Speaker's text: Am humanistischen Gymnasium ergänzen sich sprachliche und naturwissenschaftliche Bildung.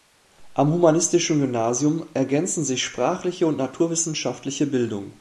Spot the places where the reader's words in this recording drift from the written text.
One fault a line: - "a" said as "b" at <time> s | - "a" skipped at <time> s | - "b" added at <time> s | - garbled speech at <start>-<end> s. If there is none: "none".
none